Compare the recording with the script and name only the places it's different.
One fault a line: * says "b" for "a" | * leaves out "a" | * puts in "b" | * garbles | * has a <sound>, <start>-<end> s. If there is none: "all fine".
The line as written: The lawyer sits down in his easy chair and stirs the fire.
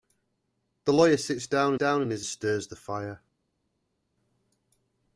* puts in "down"
* leaves out "easy chair and"